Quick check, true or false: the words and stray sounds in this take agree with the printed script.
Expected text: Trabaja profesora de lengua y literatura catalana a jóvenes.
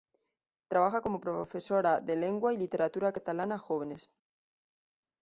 false